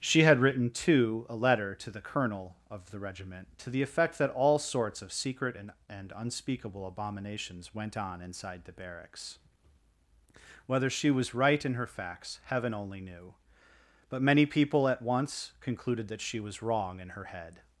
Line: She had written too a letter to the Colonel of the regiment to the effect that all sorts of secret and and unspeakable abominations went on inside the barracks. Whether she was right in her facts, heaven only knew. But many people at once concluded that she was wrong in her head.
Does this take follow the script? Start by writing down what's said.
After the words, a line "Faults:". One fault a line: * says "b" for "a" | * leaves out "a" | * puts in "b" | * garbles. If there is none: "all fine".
She had written too a letter to the Colonel of the regiment to the effect that all sorts of secret and and unspeakable abominations went on inside the barracks. Whether she was right in her facts, heaven only knew. But many people at once concluded that she was wrong in her head.
Faults:
all fine